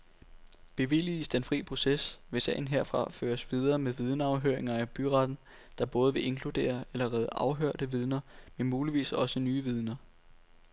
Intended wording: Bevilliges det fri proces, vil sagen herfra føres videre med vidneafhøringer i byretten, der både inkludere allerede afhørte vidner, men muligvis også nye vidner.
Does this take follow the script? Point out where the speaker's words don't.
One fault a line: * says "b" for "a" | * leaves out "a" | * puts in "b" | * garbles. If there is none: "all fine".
* says "den" for "det"
* puts in "vil"